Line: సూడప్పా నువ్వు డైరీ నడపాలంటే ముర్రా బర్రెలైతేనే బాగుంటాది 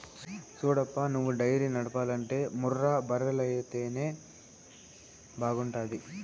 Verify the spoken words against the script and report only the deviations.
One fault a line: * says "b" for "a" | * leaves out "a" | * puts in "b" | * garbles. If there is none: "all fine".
all fine